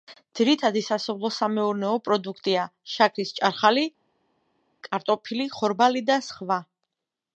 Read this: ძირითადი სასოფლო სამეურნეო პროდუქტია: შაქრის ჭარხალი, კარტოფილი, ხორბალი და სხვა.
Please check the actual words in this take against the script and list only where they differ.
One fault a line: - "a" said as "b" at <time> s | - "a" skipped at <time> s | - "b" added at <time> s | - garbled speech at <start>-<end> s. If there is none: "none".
none